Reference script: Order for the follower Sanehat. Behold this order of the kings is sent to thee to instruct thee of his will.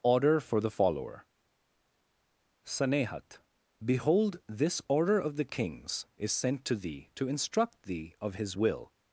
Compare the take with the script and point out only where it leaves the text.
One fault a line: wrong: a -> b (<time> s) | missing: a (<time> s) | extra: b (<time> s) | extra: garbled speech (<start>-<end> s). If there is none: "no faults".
no faults